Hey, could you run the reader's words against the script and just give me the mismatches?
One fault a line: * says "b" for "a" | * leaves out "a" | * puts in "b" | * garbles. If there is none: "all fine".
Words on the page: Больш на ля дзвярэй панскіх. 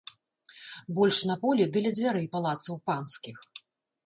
* puts in "полі ды"
* puts in "палацаў"